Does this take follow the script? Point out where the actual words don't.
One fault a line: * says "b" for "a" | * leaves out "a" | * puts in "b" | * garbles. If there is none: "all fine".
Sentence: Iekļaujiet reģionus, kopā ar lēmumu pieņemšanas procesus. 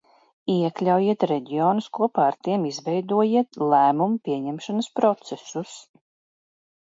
* puts in "tiem izveidojiet"